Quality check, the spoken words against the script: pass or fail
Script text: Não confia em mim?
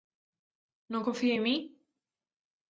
pass